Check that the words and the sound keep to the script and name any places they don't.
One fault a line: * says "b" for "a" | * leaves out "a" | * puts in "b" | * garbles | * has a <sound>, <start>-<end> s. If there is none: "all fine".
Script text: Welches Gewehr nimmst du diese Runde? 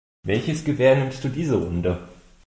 all fine